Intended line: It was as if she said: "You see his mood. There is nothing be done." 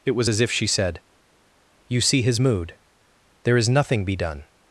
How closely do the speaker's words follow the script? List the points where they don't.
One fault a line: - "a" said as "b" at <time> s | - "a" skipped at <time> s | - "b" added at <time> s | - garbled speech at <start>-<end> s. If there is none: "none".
none